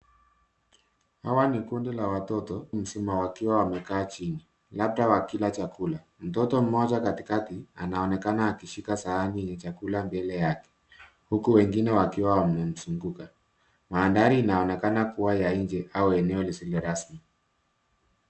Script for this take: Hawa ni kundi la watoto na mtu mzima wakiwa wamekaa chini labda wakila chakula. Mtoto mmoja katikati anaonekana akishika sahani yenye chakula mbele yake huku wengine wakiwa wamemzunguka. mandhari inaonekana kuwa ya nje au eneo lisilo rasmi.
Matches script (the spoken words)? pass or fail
fail